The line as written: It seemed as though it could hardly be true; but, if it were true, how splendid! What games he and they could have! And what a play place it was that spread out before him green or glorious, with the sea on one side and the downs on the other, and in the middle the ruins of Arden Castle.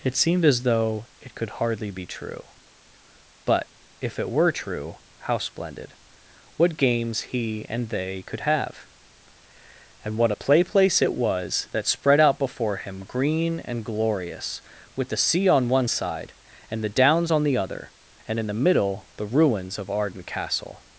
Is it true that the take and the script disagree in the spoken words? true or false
true